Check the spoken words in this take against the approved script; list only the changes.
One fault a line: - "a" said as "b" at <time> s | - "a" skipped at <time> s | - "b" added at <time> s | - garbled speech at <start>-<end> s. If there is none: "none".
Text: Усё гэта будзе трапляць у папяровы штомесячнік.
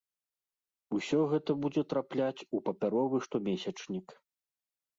none